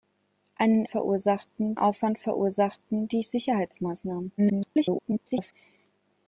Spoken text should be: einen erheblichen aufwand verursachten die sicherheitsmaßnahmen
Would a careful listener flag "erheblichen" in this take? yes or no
yes